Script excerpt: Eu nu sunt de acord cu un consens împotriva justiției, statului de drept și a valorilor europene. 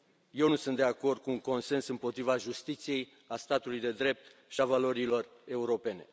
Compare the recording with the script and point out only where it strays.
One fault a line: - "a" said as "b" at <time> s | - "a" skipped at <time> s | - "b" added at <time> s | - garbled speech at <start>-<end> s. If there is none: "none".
- "a" added at 3.3 s